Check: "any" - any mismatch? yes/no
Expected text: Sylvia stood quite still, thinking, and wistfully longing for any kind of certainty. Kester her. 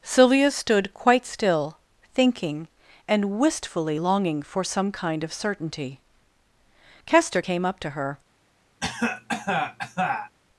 yes